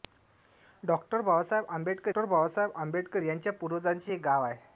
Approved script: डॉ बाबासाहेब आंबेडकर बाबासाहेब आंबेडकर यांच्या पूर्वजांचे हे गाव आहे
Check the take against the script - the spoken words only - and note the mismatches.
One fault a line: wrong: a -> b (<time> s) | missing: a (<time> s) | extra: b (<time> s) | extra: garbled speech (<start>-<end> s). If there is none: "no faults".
no faults